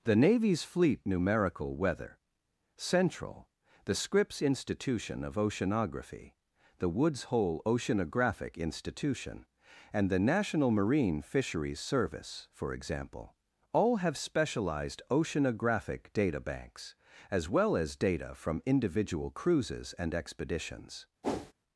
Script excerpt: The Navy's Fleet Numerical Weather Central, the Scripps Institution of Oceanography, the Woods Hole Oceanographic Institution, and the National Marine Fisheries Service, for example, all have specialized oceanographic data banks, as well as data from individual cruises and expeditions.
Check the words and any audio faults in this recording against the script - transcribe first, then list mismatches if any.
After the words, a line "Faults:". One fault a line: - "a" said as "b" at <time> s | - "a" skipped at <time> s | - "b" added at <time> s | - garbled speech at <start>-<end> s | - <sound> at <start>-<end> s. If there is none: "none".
The Navy's Fleet Numerical Weather Central, the Scripps Institution of Oceanography, the Woods Hole Oceanographic Institution, and the National Marine Fisheries Service, for example, all have specialized oceanographic data banks, as well as data from individual cruises and expeditions.
Faults:
- whoosh at 21.2-21.5 s